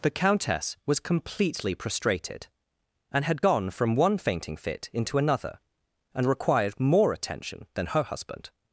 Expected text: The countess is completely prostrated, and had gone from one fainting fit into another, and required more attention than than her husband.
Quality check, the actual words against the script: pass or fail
fail